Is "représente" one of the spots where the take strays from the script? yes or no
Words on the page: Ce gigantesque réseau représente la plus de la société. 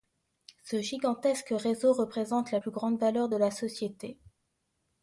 no